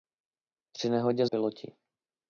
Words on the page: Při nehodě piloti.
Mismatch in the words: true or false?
false